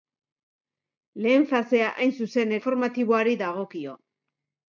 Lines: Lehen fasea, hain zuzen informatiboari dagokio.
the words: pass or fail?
pass